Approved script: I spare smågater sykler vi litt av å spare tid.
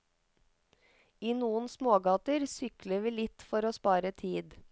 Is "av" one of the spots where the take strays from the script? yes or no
yes